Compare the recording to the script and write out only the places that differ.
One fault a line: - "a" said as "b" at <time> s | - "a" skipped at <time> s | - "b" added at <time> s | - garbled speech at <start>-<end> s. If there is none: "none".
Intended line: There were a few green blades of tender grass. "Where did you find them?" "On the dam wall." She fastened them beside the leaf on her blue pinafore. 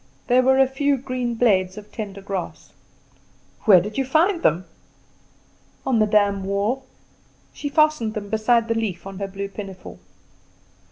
none